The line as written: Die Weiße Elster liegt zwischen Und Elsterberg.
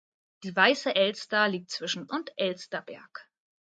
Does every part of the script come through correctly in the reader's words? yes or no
yes